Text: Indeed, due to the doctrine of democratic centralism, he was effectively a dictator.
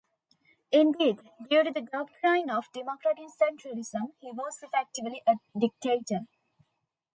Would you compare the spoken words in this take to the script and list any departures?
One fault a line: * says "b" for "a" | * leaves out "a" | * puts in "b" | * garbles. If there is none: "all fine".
all fine